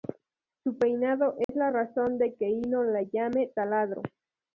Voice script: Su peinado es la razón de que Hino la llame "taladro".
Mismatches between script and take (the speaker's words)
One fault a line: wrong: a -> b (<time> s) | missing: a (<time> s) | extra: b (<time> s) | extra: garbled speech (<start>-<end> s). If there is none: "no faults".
no faults